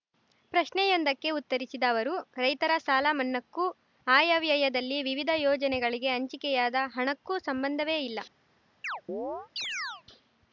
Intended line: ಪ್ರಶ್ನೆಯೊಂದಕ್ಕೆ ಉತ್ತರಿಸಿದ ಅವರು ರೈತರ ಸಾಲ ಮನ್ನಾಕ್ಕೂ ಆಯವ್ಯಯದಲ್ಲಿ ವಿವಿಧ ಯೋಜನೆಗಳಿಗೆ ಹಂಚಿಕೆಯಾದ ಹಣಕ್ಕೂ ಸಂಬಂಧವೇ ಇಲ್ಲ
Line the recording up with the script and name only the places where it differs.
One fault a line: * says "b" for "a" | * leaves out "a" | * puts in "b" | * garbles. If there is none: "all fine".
all fine